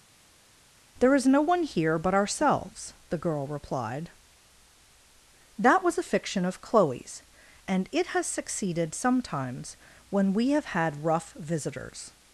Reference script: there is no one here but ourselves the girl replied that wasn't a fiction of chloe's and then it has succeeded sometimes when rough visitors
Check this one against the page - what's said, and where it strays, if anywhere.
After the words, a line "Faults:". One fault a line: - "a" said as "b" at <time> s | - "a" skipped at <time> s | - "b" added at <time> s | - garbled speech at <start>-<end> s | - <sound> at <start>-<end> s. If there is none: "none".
there is no one here but ourselves the girl replied that was a fiction of chloe's and it has succeeded sometimes when we have had rough visitors
Faults:
- "wasn't" said as "was" at 5.8 s
- "then" skipped at 7.9 s
- "we have had" added at 10.3 s